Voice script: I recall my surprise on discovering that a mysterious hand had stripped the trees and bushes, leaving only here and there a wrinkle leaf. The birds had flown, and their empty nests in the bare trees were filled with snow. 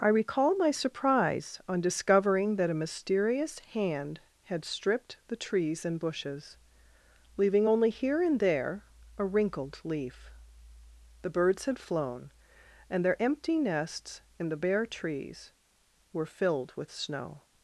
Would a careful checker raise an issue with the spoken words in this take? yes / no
yes